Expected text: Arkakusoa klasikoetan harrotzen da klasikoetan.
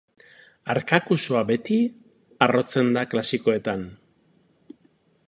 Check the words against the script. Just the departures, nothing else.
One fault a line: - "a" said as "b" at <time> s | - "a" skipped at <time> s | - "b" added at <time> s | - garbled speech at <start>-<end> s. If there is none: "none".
- "klasikoetan" said as "beti" at 1.5 s